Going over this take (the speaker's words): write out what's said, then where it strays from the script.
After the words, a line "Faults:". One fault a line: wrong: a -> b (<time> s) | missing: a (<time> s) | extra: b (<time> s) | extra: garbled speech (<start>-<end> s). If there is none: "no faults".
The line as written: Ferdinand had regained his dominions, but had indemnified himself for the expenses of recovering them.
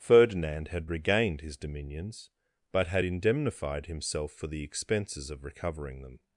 Ferdinand had regained his dominions, but had indemnified himself for the expenses of recovering them.
Faults:
no faults